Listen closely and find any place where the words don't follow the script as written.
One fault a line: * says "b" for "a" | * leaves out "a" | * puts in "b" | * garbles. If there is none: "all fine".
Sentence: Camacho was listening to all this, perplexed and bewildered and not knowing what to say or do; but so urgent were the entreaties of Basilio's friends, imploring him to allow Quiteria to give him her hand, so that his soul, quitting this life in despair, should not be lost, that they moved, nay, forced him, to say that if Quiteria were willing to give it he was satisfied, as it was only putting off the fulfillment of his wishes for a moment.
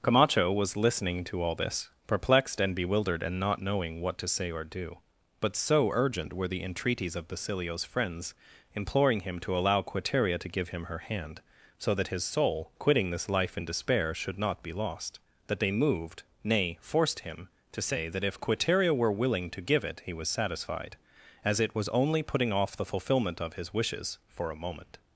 all fine